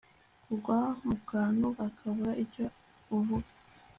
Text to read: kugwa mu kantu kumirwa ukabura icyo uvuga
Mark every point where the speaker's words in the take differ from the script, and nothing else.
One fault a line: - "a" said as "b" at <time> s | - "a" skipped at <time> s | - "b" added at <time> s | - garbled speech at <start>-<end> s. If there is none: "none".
- "kumirwa" skipped at 1.6 s